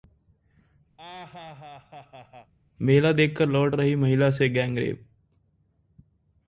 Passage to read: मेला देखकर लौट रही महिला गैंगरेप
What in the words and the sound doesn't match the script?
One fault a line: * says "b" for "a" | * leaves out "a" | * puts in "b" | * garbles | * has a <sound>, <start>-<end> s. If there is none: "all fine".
* has a laugh, 1.0-2.5 s
* puts in "से"